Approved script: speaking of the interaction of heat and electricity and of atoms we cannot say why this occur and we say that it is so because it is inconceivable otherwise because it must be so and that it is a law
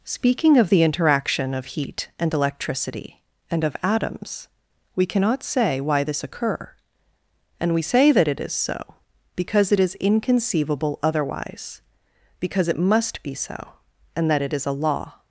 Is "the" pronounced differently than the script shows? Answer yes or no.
no